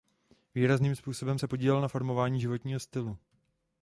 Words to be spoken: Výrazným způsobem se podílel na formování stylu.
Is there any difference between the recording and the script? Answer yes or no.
yes